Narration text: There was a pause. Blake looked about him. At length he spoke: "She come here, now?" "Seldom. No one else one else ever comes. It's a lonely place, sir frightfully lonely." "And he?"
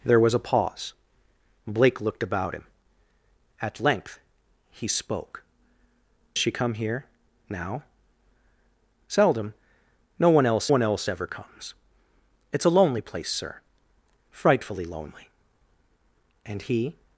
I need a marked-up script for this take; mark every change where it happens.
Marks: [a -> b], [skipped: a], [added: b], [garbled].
There was a pause. Blake looked about him. At length he spoke: "She come here, now?" "Seldom. No one else one else ever comes. It's a lonely place, sir frightfully lonely." "And he?"